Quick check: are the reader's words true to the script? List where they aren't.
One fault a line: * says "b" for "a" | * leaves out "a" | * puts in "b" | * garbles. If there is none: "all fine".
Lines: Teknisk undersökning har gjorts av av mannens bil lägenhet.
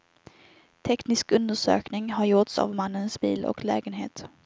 * leaves out "av"
* puts in "och"